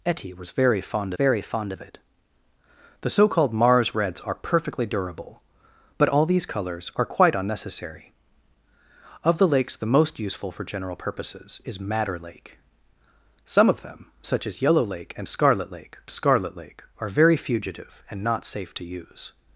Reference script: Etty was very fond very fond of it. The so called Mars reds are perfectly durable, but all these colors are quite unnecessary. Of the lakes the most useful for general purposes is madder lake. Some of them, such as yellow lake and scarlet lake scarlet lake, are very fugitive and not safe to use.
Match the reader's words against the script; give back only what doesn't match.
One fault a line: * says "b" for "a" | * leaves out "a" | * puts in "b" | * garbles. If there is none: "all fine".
all fine